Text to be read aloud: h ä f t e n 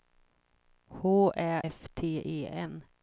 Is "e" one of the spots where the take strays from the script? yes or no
no